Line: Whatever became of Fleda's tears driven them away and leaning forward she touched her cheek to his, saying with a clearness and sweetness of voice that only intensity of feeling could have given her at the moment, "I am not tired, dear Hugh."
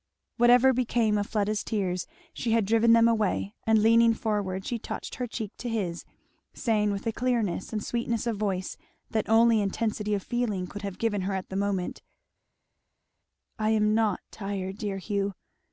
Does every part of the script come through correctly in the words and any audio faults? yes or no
no